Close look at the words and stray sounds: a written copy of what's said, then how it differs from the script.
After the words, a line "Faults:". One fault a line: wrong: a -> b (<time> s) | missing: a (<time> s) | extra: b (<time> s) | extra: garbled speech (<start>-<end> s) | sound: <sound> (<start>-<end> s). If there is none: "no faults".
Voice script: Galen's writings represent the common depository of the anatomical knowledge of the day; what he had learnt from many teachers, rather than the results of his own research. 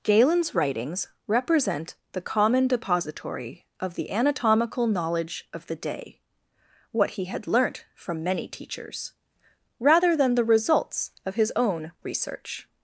Galen's writings represent the common depository of the anatomical knowledge of the day; what he had learnt from many teachers, rather than the results of his own research.
Faults:
no faults